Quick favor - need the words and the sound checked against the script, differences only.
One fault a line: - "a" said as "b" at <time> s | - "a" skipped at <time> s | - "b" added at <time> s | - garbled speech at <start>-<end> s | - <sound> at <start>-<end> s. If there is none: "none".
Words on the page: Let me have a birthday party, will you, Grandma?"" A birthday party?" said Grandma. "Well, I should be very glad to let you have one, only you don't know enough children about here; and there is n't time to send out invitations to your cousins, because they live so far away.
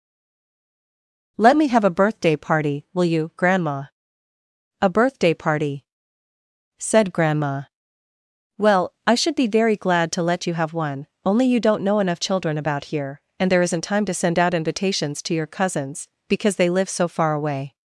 none